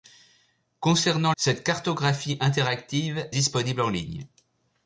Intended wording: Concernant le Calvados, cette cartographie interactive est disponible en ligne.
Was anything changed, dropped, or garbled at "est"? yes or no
yes